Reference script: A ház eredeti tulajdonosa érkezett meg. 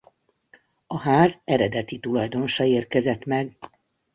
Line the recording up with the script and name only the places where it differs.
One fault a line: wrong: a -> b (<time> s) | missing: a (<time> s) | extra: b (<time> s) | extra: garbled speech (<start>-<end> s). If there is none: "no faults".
no faults